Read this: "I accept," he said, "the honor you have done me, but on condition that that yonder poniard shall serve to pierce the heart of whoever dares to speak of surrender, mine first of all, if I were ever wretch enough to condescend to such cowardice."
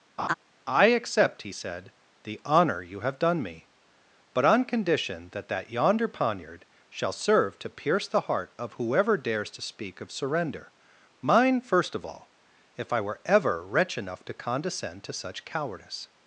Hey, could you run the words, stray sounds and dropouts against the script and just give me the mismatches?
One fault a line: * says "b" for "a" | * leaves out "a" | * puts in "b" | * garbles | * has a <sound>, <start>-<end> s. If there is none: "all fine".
* has a laugh, 0.2-0.3 s